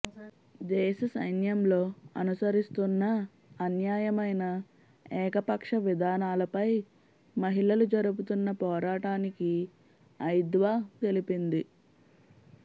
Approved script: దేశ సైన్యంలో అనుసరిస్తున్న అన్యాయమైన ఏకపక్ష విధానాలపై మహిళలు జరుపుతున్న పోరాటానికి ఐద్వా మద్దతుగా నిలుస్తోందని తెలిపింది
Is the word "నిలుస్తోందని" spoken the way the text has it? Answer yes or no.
no